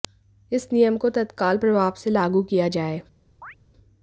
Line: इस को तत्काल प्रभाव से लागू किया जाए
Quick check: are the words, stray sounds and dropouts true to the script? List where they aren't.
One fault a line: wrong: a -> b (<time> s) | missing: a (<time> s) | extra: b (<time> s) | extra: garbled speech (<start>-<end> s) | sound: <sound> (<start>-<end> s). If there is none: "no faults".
extra: नियम (0.7 s)
sound: chirp (3.4-3.6 s)